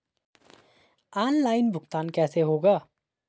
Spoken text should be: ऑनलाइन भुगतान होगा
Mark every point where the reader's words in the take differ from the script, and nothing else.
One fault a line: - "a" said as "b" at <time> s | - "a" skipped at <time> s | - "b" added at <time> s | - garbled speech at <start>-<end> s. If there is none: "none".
- "कैसे" added at 2.1 s